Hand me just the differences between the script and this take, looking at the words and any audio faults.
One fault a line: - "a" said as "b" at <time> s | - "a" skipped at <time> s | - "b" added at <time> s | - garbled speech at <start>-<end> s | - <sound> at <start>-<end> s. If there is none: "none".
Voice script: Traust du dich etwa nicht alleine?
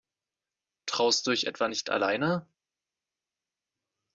none